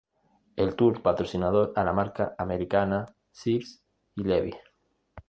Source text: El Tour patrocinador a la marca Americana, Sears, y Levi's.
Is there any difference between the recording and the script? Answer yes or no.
no